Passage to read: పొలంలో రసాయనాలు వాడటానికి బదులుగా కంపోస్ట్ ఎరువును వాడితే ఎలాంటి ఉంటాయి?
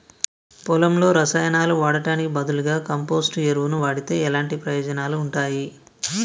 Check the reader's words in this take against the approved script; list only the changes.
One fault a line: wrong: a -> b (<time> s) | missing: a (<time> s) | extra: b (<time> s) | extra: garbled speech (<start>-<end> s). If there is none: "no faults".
extra: ప్రయోజనాలు (4.6 s)